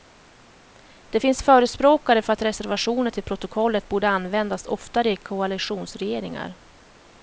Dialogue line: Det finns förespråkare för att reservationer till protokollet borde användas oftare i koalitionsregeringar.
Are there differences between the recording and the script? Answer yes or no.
no